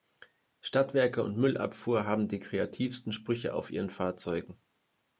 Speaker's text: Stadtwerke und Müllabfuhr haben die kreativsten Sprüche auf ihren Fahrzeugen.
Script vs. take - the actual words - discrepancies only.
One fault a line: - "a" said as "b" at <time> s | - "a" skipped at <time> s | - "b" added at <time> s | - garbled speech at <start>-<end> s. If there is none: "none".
none